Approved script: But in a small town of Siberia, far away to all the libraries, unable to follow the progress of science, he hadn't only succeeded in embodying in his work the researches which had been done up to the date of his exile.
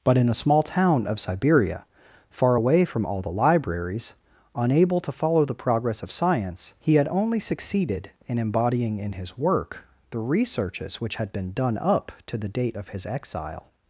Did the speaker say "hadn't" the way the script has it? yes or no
no